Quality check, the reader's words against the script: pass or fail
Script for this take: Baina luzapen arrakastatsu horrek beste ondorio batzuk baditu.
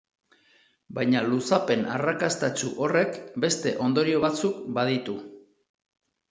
pass